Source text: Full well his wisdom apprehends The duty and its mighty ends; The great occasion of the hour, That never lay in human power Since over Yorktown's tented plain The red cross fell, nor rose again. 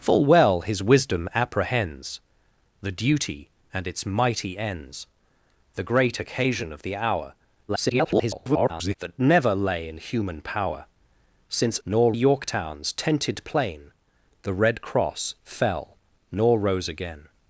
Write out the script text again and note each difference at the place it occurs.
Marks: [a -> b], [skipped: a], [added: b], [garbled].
Full well his wisdom apprehends The duty and its mighty ends; The great occasion of the hour, [garbled] That never lay in human power Since [over -> nor] Yorktown's tented plain The red cross fell, nor rose again.